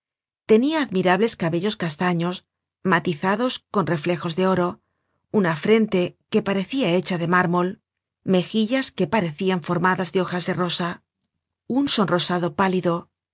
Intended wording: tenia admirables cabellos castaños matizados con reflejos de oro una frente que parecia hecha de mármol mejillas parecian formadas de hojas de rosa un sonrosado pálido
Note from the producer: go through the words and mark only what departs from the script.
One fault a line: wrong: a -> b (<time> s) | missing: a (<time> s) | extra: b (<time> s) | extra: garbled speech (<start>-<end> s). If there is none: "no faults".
extra: que (9.0 s)